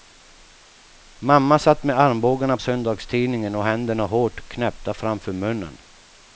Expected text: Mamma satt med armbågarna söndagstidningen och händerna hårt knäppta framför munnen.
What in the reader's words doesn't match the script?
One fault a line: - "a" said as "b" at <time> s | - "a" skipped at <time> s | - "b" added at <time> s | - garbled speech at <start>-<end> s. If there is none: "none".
none